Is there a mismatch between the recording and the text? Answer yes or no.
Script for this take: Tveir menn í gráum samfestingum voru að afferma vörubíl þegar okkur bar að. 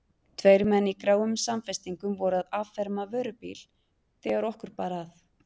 no